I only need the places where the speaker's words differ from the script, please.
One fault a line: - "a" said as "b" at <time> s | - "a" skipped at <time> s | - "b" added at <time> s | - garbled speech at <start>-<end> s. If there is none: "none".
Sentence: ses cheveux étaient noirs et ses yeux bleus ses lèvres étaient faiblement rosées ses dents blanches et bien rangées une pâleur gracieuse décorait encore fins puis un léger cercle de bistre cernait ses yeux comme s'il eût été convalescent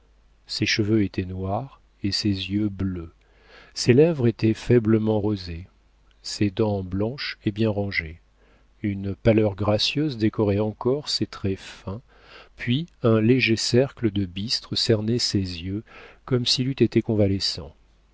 - "ses traits" added at 11.1 s